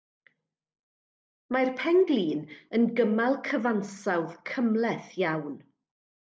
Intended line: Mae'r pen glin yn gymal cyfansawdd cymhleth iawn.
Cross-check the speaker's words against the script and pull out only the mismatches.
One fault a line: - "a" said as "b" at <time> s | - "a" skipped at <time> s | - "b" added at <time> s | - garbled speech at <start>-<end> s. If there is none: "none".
none